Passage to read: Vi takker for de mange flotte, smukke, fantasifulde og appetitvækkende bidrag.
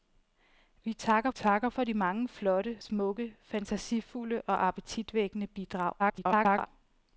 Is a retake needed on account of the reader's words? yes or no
yes